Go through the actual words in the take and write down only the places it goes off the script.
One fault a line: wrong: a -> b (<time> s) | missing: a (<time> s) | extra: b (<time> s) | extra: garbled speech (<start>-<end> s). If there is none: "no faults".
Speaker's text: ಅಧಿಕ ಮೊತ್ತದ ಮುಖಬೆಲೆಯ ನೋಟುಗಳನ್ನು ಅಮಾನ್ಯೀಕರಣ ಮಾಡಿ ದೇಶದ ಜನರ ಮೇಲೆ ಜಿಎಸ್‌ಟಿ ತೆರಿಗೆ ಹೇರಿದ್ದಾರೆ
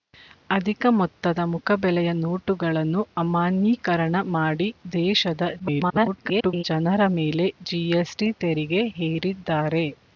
extra: garbled speech (5.6-6.6 s)